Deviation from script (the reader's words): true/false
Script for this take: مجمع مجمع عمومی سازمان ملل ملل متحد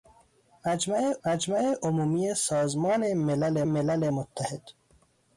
false